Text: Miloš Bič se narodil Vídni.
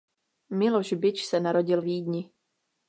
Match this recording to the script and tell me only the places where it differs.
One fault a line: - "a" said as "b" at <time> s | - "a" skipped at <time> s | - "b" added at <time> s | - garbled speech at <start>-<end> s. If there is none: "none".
none